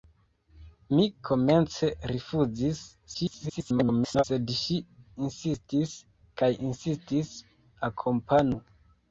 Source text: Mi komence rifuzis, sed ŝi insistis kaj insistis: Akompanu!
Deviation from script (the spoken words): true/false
true